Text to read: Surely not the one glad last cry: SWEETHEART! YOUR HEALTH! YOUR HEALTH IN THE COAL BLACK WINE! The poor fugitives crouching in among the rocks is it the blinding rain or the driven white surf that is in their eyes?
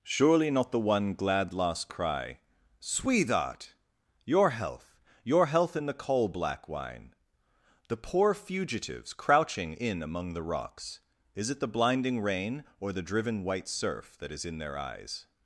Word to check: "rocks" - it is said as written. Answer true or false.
true